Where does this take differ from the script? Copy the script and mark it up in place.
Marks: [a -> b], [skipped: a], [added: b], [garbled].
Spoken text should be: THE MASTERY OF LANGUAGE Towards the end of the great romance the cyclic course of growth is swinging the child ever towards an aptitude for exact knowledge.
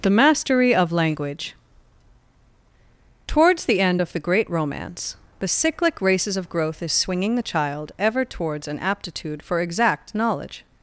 THE MASTERY OF LANGUAGE Towards the end of the great romance the cyclic [course -> races] of growth is swinging the child ever towards an aptitude for exact knowledge.